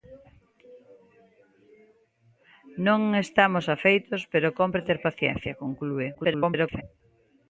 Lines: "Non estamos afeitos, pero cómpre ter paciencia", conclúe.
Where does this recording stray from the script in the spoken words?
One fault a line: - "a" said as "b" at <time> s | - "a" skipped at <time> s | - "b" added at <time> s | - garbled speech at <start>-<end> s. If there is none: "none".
- garbled speech at 6.1-6.8 s